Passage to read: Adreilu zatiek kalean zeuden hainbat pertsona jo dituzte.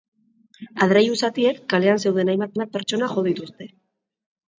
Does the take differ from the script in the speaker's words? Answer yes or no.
yes